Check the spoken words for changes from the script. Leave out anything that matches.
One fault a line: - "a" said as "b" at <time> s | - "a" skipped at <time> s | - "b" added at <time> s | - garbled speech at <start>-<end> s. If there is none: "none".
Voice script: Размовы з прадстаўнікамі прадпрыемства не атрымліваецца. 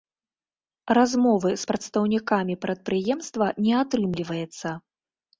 none